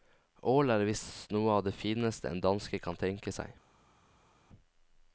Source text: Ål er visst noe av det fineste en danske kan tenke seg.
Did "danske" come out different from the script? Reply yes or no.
no